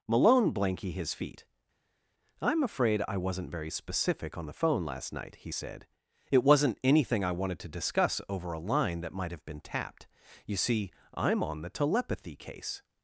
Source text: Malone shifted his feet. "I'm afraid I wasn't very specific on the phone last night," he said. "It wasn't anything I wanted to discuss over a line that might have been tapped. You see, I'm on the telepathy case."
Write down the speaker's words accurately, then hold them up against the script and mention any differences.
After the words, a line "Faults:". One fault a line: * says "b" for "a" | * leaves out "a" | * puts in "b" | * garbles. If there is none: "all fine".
Malone blanky his feet. "I'm afraid I wasn't very specific on the phone last night," he said. "It wasn't anything I wanted to discuss over a line that might have been tapped. You see, I'm on the telepathy case."
Faults:
* says "blanky" for "shifted"